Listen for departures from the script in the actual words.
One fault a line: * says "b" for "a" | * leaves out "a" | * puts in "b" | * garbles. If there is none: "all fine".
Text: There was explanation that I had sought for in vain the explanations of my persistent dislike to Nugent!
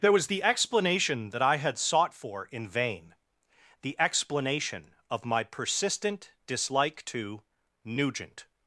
* puts in "the"
* says "explanation" for "explanations"